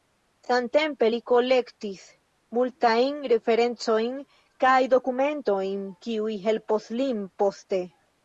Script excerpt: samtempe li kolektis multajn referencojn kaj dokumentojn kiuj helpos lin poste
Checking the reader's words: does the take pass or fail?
pass